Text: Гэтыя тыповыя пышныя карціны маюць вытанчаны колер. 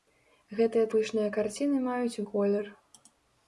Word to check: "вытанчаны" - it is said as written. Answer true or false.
false